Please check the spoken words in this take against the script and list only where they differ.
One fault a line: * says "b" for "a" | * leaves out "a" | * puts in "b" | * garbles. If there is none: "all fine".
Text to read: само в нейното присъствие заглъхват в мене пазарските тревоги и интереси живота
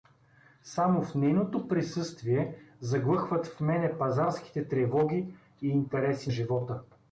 all fine